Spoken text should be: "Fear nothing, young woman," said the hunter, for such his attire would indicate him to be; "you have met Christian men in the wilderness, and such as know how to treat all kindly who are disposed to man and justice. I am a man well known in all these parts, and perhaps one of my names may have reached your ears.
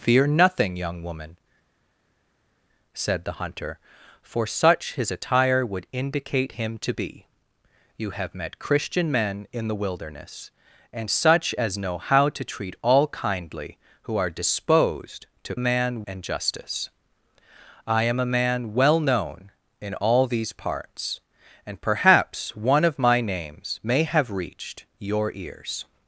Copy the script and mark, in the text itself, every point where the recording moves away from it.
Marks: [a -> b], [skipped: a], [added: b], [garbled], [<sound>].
"Fear nothing, young woman," said the hunter, for such his attire would indicate him to be; "you have met Christian men in the wilderness, and such as know how to treat all kindly who are disposed to man and justice. I am a man well known in all these parts, and perhaps one of my names may have reached your ears.